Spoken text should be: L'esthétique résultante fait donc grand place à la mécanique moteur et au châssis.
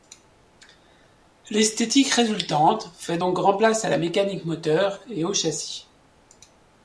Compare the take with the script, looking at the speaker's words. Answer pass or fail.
pass